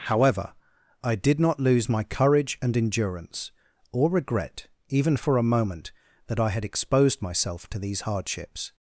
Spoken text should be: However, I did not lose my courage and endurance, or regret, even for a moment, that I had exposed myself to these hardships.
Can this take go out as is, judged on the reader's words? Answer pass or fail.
pass